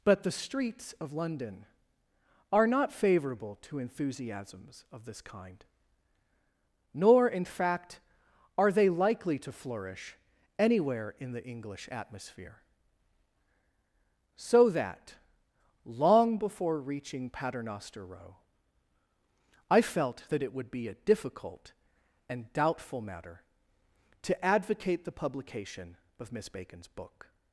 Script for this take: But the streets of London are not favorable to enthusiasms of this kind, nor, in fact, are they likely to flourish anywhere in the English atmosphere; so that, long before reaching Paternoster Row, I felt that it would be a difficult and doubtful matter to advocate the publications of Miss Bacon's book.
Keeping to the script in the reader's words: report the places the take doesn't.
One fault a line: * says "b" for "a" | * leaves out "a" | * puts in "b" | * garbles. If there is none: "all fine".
* says "publication" for "publications"